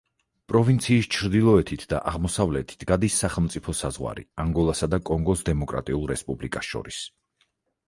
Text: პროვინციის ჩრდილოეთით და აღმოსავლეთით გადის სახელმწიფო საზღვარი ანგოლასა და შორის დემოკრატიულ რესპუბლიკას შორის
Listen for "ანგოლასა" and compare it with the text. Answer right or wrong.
right